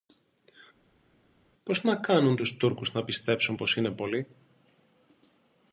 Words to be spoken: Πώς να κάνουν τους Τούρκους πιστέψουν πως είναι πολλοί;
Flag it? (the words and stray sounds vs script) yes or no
yes